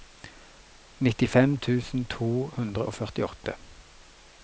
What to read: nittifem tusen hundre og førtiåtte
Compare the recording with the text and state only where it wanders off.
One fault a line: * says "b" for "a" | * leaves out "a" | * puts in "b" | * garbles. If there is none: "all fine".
* puts in "to"